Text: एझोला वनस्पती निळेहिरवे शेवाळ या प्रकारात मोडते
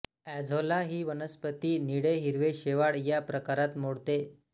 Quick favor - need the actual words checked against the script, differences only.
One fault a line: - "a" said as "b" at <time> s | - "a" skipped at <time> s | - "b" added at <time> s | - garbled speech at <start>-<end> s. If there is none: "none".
- "ही" added at 0.8 s